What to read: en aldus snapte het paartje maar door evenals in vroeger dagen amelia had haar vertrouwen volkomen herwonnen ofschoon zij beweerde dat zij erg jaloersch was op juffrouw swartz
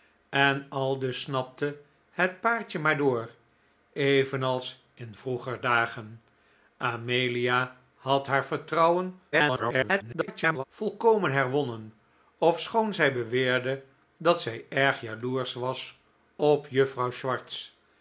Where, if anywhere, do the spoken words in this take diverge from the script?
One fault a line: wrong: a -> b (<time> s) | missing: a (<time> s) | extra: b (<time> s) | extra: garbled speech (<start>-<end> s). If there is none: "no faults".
extra: garbled speech (9.3-10.6 s)